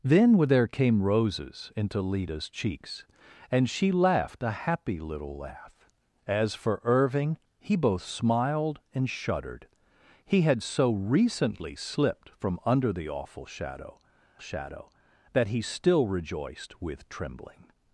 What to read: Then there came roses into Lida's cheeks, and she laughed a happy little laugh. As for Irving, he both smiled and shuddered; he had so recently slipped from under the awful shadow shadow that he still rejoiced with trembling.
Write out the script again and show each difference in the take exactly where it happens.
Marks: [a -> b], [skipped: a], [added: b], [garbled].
Then there came roses into Lida's cheeks, and she laughed a happy little laugh. As for Irving, he both smiled and shuddered; he had so recently slipped from under the awful shadow shadow that he still rejoiced with trembling.